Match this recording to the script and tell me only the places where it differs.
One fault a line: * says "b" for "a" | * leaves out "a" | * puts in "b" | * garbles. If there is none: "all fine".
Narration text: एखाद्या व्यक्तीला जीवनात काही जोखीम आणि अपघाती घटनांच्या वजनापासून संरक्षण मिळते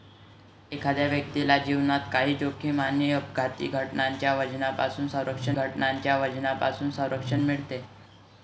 * puts in "घटनांच्या वजनापासून संरक्षण"